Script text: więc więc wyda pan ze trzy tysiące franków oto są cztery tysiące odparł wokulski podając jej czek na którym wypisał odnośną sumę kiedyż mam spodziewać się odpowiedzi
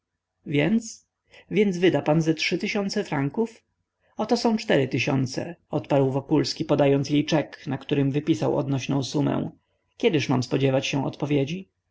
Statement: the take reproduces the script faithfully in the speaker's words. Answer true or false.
true